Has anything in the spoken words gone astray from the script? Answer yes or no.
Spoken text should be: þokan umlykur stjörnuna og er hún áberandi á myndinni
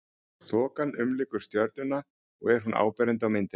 no